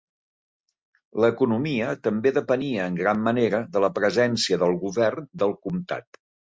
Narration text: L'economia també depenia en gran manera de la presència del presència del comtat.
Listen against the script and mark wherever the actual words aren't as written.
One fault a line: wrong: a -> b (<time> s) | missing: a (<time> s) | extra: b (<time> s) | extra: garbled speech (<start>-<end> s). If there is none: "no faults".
wrong: presència -> govern (4.9 s)